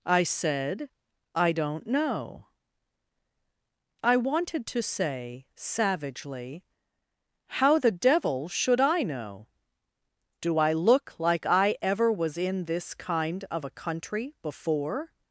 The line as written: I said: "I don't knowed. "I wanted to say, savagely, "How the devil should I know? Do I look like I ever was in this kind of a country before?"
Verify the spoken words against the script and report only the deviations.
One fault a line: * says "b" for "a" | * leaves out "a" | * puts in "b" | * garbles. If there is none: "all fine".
* says "know" for "knowed"